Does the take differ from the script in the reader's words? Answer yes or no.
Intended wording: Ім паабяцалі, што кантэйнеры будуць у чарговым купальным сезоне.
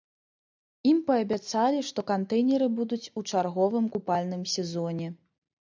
no